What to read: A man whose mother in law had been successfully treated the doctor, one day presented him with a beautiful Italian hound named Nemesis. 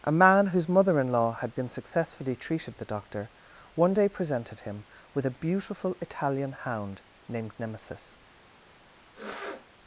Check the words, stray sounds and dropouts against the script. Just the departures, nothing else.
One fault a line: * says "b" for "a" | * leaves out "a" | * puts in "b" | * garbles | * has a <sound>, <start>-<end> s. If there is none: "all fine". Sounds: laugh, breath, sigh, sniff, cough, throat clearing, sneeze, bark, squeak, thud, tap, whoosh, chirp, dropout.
* has a sniff, 9.1-9.7 s